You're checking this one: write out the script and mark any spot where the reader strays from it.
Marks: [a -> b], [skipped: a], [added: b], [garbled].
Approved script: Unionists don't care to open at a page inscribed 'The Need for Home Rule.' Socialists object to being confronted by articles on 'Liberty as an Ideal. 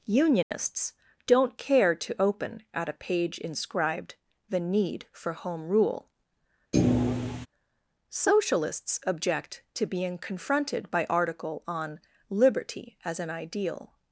Unionists don't care to open at a page inscribed 'The Need for Home Rule.' Socialists object to being confronted by [articles -> article] on 'Liberty as an Ideal.